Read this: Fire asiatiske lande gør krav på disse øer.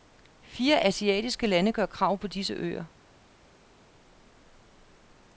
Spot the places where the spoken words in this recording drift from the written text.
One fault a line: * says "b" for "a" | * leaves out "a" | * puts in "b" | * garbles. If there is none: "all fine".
all fine